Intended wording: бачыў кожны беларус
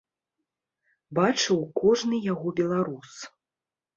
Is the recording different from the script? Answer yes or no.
yes